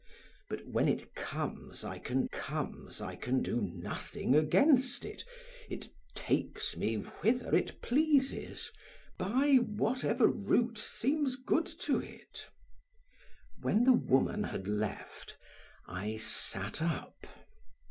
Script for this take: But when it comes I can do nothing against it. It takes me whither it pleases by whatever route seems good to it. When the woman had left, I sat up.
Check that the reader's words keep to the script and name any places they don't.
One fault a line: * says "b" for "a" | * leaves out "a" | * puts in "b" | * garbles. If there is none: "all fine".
* puts in "comes I can"